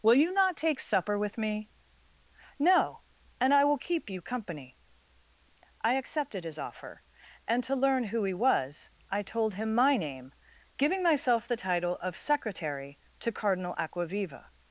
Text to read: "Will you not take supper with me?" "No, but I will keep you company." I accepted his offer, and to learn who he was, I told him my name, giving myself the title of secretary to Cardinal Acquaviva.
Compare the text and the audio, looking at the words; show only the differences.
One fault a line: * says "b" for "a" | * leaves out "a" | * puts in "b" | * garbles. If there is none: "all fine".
* says "and" for "but"